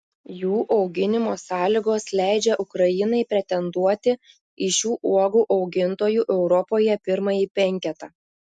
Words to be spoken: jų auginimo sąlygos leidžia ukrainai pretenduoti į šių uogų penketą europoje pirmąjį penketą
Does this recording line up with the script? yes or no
no